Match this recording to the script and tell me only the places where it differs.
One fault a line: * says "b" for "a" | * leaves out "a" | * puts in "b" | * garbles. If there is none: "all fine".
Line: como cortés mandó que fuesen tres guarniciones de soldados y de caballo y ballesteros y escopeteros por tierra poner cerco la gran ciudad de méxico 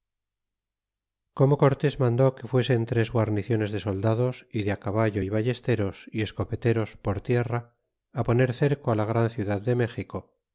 all fine